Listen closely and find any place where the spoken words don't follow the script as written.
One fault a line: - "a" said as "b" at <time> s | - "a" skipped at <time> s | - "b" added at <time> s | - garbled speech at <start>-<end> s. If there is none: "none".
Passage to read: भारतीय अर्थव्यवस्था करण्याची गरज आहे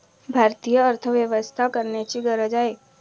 none